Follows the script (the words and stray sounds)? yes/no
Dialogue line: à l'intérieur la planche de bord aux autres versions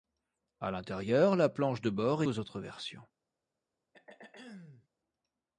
no